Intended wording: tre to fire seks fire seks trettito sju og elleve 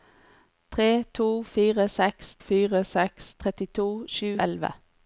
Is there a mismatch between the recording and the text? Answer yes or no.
no